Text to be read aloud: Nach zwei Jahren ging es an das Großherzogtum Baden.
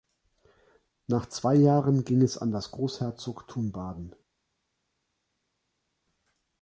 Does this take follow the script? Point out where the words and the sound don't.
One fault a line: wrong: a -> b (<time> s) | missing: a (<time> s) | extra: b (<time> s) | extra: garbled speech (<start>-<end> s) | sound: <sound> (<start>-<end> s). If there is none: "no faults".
no faults